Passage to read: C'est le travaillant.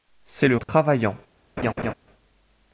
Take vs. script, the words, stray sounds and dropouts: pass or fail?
fail